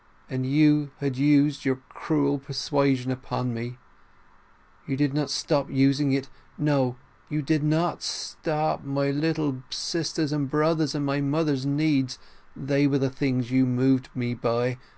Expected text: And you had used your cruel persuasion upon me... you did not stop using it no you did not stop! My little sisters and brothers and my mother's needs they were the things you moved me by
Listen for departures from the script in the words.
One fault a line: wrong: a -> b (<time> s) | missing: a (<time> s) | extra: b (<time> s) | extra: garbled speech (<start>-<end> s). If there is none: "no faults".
no faults